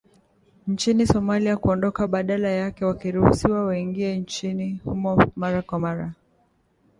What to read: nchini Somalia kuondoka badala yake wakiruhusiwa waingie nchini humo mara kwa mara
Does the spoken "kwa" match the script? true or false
true